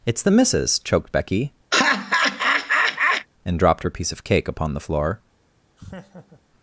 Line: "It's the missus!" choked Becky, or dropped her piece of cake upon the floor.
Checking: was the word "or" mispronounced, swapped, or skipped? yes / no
yes